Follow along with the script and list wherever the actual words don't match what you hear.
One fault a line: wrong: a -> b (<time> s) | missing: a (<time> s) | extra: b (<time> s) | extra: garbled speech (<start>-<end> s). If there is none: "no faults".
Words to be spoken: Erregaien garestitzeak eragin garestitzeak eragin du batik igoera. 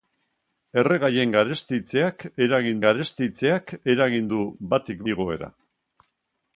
no faults